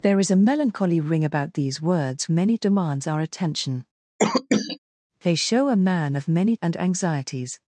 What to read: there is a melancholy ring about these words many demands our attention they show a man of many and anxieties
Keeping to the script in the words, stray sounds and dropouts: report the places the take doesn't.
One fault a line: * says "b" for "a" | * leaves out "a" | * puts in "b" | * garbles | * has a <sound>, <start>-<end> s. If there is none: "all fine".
* has a cough, 4.2-4.8 s